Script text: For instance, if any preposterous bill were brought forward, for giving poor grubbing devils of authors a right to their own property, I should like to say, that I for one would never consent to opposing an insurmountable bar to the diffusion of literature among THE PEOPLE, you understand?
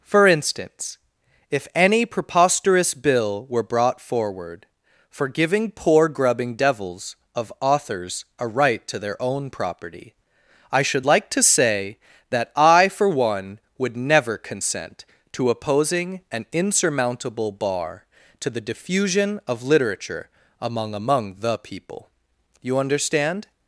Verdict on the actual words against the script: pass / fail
fail